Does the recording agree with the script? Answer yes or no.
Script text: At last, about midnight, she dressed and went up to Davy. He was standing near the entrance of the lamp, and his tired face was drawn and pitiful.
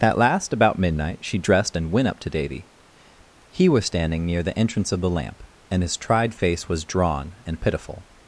no